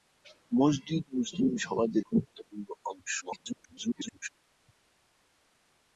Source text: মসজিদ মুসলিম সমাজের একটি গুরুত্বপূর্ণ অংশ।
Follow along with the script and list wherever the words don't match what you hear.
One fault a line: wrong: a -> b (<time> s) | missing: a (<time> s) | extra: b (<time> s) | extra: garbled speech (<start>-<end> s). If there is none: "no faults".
missing: একটি (2.0 s)
extra: garbled speech (3.2-4.3 s)